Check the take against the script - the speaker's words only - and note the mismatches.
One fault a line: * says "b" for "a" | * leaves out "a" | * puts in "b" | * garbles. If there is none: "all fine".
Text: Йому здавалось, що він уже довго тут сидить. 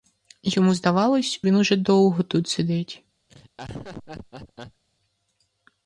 * leaves out "що"